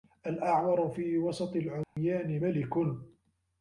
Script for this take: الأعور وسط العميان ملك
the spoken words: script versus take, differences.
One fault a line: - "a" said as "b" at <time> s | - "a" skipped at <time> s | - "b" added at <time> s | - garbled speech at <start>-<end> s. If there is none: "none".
- "في" added at 0.9 s